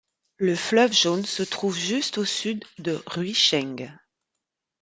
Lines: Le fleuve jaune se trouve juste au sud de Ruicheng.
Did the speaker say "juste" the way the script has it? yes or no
yes